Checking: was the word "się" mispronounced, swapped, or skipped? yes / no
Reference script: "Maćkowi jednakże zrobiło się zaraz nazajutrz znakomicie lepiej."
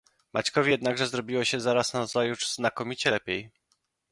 no